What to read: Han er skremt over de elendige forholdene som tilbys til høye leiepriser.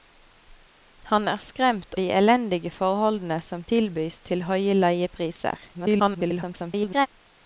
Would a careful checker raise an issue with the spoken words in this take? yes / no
yes